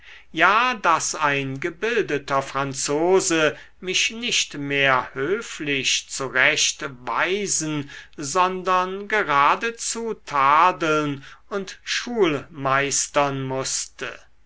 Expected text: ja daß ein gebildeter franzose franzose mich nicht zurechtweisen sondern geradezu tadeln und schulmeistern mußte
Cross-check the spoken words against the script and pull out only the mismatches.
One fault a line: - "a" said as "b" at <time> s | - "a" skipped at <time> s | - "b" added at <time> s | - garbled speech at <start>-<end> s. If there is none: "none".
- "franzose" skipped at 3.5 s
- "mehr höflich" added at 4.5 s